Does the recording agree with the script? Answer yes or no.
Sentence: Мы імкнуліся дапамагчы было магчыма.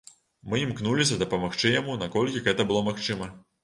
no